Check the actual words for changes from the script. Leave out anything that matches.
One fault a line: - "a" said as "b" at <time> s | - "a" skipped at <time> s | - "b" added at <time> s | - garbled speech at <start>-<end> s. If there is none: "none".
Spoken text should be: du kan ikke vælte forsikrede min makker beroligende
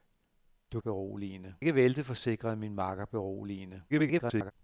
- "kan" said as "beroligende" at 0.8 s
- garbled speech at 3.9-4.5 s